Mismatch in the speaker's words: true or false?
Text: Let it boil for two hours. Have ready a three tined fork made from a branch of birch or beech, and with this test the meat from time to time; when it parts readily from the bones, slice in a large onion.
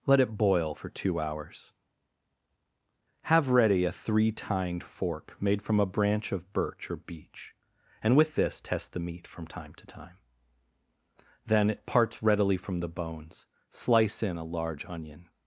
true